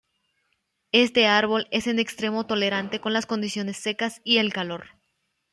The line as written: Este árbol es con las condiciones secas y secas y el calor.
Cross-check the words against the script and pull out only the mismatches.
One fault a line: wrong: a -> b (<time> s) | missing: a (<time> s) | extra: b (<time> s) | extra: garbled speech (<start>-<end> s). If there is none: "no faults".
extra: en extremo tolerante (1.9 s)
missing: secas y (4.4 s)